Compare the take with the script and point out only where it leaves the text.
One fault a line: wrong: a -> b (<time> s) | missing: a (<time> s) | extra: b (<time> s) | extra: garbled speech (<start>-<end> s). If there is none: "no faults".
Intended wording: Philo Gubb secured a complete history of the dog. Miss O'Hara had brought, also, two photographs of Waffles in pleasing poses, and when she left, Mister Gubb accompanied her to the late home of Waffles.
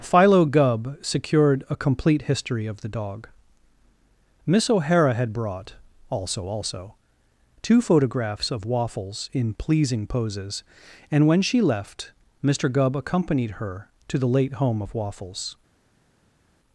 extra: also (6.5 s)